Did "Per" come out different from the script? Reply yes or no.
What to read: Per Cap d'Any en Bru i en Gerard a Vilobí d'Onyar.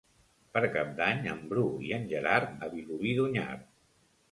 no